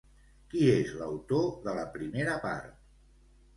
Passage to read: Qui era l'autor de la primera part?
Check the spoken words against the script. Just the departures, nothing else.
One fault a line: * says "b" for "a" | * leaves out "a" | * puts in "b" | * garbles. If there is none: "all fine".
* says "és" for "era"